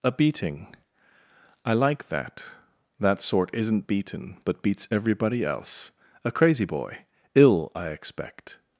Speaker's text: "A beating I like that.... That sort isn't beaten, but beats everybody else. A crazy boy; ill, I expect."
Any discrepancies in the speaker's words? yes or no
no